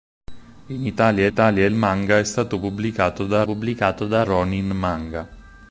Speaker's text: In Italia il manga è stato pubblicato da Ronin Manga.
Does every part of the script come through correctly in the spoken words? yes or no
no